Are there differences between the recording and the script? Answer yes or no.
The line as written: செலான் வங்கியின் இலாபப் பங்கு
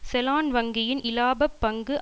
no